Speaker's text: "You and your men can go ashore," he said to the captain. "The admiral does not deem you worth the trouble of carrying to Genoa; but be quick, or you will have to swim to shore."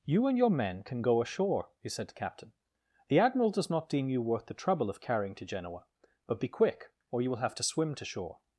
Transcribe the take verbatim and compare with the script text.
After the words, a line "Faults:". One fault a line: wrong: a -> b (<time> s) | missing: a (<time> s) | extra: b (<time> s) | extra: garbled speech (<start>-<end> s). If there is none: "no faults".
"You and your men can go ashore," he said to captain. "The admiral does not deem you worth the trouble of carrying to Genoa; but be quick, or you will have to swim to shore."
Faults:
missing: the (2.1 s)